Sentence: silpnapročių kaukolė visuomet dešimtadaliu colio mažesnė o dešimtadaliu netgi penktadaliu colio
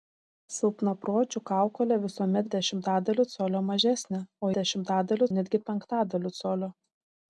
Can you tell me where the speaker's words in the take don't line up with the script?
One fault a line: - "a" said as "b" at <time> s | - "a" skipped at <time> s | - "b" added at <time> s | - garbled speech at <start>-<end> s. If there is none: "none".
none